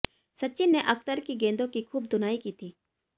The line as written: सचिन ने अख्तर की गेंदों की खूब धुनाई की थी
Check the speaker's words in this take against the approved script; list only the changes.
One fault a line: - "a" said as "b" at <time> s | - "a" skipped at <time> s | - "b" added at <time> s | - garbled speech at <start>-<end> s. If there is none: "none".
none